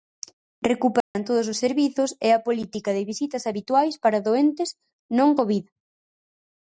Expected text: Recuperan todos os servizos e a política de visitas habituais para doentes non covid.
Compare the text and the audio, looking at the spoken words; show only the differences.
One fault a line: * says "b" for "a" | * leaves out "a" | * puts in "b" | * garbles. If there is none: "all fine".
all fine